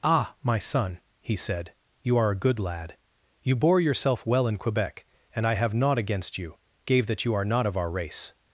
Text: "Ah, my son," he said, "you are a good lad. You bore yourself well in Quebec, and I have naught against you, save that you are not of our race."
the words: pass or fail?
fail